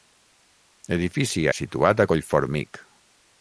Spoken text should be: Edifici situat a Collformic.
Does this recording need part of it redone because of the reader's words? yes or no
no